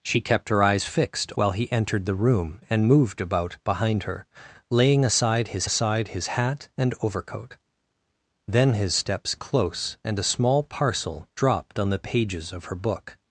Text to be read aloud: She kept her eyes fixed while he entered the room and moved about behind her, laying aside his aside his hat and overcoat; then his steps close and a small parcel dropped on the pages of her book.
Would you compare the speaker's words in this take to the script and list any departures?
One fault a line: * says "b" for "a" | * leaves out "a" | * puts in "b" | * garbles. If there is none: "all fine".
all fine